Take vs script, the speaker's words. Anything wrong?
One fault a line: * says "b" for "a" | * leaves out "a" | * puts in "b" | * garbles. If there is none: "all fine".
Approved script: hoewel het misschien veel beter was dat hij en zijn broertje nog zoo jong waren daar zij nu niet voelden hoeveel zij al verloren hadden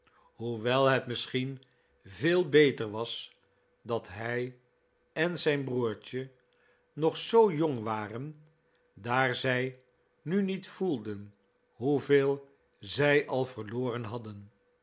all fine